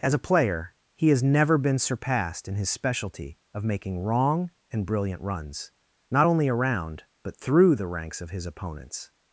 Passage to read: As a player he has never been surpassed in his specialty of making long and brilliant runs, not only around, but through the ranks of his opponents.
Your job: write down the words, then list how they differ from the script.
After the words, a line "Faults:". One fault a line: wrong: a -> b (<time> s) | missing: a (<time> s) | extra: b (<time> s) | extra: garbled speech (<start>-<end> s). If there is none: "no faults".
As a player he has never been surpassed in his specialty of making wrong and brilliant runs, not only around, but through the ranks of his opponents.
Faults:
wrong: long -> wrong (4.0 s)